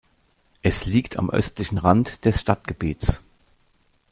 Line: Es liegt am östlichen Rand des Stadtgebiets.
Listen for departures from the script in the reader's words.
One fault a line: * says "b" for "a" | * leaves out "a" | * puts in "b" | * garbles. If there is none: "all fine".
all fine